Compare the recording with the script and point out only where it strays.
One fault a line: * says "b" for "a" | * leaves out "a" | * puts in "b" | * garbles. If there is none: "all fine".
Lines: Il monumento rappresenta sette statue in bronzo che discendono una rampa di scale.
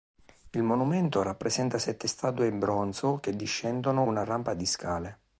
all fine